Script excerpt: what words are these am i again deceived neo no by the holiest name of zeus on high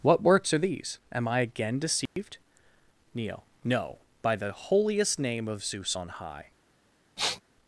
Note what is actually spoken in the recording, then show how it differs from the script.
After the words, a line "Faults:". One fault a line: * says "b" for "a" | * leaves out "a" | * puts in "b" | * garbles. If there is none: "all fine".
what works are these am i again deceived neo no by the holiest name of zeus on high
Faults:
* says "works" for "words"